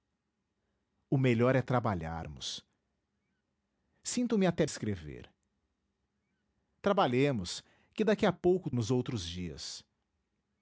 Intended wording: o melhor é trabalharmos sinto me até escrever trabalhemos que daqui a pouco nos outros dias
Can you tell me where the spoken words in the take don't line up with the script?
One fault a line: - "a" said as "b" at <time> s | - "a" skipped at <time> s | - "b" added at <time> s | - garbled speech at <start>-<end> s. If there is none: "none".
none